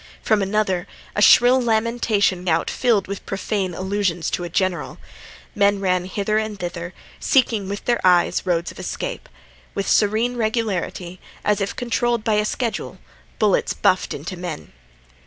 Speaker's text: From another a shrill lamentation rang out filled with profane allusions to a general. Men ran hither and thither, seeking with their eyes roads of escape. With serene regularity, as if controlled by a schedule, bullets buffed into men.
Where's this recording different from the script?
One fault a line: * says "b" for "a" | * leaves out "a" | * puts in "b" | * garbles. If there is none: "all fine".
* leaves out "rang"